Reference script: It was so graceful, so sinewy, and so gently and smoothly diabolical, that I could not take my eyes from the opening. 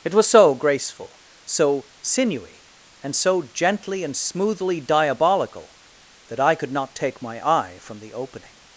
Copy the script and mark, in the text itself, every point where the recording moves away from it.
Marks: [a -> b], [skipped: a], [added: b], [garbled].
It was so graceful, so sinewy, and so gently and smoothly diabolical, that I could not take my [eyes -> eye] from the opening.